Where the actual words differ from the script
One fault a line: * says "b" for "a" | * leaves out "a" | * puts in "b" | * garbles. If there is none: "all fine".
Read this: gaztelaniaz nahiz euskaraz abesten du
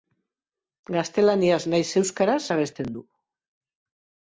all fine